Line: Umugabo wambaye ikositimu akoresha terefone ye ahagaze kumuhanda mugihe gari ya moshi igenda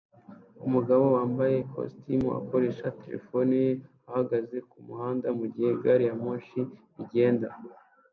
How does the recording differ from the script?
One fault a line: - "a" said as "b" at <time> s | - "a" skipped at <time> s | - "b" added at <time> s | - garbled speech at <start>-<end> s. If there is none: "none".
none